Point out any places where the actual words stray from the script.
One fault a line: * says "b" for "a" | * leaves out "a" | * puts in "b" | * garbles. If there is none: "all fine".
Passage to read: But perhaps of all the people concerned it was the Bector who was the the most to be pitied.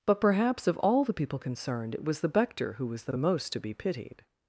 all fine